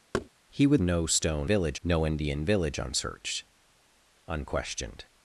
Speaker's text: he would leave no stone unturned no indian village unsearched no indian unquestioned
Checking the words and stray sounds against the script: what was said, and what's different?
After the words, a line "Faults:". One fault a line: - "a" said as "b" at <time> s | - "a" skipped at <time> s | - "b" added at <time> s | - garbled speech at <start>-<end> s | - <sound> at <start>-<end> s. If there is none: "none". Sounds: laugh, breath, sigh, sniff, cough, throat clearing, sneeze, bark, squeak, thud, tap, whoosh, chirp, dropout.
he would no stone village no indian village unsearched unquestioned
Faults:
- thud at 0.1-0.3 s
- "leave" skipped at 0.8 s
- "unturned" said as "village" at 1.4 s
- "no indian" skipped at 3.4 s